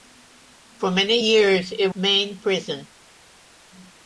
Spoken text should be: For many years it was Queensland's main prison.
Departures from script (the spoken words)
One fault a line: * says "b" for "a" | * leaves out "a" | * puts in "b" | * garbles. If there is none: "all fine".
* leaves out "was Queensland's"